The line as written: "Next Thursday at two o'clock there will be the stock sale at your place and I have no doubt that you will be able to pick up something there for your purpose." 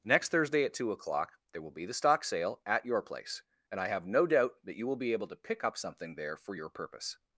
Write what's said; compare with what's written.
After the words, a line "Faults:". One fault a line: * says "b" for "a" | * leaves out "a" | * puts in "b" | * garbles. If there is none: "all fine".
"Next Thursday at two o'clock there will be the stock sale at your place and I have no doubt that you will be able to pick up something there for your purpose."
Faults:
all fine